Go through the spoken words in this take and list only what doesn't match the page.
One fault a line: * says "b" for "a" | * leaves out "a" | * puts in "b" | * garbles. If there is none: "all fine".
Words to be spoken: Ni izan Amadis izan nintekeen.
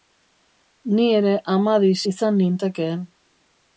* says "ere" for "izan"